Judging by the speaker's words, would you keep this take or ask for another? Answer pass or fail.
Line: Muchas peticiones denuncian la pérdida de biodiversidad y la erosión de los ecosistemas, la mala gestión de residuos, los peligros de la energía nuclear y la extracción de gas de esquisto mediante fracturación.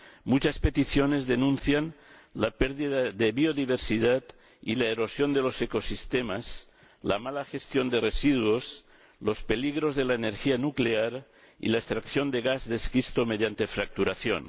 pass